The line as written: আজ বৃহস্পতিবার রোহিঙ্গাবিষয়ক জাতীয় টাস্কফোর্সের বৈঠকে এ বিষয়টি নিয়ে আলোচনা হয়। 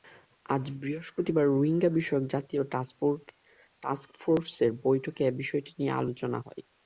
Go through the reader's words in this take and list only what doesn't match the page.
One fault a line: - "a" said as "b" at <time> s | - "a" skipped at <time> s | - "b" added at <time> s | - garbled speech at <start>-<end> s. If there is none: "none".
none